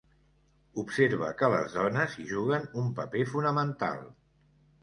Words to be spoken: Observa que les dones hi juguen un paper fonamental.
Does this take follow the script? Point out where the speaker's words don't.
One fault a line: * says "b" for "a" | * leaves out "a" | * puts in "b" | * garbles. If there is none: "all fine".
all fine